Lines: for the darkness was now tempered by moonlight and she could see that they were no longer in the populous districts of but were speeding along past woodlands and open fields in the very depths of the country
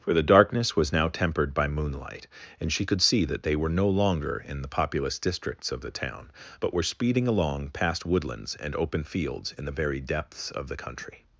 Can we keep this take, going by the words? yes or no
no